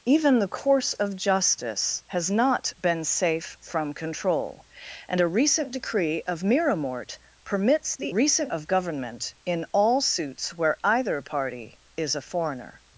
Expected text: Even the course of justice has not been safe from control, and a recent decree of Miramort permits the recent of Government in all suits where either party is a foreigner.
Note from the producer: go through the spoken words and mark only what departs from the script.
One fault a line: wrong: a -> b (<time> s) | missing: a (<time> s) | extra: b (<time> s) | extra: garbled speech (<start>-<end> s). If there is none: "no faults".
no faults